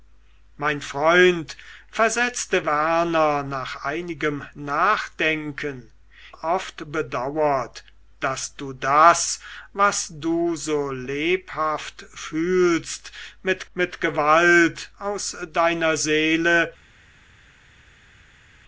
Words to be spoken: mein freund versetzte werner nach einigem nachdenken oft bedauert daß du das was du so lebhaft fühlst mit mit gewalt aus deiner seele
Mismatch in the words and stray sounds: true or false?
false